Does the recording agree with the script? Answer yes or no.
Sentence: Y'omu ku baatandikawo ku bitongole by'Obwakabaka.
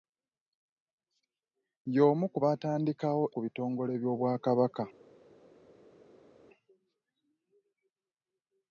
yes